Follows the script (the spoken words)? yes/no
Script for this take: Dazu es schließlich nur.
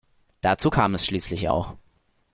no